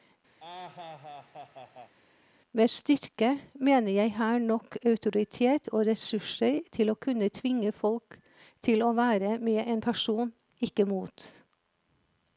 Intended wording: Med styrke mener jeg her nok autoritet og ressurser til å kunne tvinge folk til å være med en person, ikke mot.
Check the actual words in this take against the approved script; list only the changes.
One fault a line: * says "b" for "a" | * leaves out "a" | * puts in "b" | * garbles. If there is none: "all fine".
all fine